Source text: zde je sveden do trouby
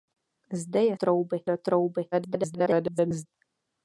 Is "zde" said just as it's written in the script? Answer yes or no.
yes